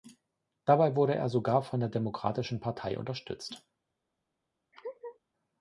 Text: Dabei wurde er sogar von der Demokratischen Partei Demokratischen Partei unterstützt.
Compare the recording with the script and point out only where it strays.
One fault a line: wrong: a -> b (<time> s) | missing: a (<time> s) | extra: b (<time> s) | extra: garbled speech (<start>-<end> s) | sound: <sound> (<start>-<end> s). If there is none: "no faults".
missing: Demokratischen Partei (3.0 s)
sound: laugh (4.7-5.2 s)